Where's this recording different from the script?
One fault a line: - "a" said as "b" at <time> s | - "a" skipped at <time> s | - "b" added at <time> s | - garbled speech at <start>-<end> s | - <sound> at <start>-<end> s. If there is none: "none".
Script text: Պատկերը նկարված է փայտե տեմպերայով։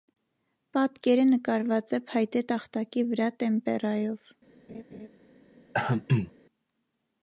- "տախտակի վրա" added at 2.5 s
- laugh at 4.7-5.1 s
- throat clearing at 5.7-6.3 s